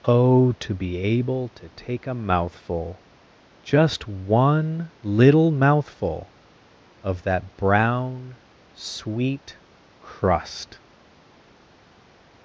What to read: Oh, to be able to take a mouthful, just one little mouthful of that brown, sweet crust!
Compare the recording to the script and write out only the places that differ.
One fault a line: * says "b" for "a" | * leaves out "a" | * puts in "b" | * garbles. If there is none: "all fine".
all fine